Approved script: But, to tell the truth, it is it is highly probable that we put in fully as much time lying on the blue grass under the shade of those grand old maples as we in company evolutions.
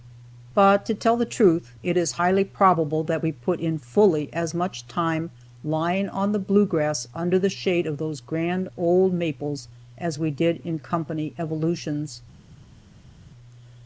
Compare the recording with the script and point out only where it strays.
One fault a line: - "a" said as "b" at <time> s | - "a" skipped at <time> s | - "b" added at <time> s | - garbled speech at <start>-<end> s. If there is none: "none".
- "it is" skipped at 2.1 s
- "did" added at 10.3 s